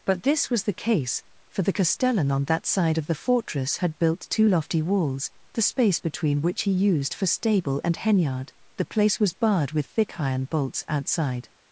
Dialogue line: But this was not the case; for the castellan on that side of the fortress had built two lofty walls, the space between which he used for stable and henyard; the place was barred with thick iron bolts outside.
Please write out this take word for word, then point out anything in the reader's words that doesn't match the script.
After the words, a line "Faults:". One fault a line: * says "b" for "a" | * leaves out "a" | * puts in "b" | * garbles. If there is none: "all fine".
But this was the case; for the castellan on that side of the fortress had built two lofty walls, the space between which he used for stable and henyard; the place was barred with thick iron bolts outside.
Faults:
* leaves out "not"